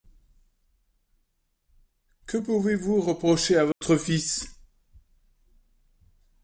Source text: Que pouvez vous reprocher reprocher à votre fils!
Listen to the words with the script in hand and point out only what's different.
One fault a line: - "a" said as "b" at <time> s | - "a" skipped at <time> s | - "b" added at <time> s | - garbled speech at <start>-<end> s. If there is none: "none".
- "reprocher" skipped at 3.6 s